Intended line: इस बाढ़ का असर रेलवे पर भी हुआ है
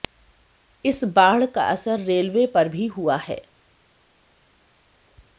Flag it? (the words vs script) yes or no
no